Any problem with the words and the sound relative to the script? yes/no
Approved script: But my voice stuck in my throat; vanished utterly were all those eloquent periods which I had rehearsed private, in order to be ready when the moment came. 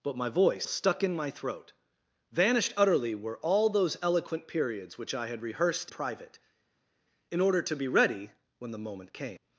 no